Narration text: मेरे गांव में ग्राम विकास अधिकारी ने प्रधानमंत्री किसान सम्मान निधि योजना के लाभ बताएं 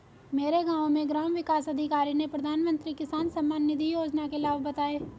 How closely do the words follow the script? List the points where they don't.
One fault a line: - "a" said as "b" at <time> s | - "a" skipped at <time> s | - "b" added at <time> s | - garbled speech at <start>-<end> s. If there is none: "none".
none